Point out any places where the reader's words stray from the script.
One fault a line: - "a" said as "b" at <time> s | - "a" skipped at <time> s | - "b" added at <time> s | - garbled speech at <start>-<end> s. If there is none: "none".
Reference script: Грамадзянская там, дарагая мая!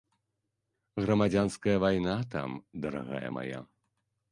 - "вайна" added at 1.9 s